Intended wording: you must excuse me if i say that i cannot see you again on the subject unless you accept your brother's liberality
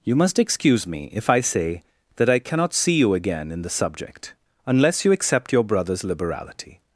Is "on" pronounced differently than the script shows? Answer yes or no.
yes